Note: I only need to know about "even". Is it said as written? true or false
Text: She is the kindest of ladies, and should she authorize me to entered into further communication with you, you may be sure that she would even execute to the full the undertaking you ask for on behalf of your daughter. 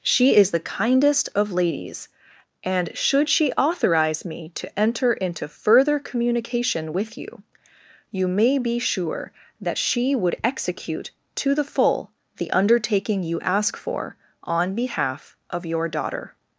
false